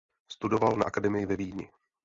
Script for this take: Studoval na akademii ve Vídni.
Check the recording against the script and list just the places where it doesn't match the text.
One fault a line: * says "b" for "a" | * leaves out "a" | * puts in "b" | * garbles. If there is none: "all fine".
all fine